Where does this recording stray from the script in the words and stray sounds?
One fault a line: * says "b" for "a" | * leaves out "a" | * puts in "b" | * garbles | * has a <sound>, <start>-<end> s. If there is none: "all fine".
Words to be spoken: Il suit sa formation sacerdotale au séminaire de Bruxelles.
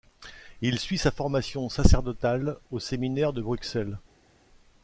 all fine